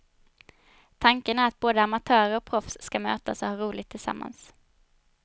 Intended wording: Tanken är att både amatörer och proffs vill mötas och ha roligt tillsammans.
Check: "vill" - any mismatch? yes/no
yes